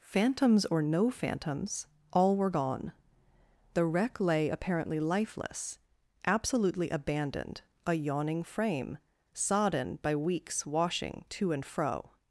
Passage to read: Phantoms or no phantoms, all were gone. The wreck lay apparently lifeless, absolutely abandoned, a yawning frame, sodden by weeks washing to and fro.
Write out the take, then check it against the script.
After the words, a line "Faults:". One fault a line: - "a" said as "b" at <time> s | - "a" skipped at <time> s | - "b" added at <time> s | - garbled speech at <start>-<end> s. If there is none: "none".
Phantoms or no phantoms, all were gone. The wreck lay apparently lifeless, absolutely abandoned, a yawning frame, sodden by weeks washing to and fro.
Faults:
none